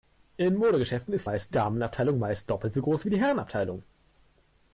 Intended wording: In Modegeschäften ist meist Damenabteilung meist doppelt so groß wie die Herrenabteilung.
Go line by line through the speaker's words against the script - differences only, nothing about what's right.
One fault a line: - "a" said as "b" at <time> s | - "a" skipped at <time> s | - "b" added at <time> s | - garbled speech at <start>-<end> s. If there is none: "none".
none